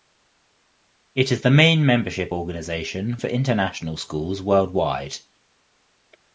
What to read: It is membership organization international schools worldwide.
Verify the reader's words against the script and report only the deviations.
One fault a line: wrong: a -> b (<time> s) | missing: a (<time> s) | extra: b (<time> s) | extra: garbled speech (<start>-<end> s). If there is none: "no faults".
extra: the main (1.4 s)
extra: for (3.1 s)